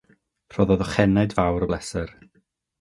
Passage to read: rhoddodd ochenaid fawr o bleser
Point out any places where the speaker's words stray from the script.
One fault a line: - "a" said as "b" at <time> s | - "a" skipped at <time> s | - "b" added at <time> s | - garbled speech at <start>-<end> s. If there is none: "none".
none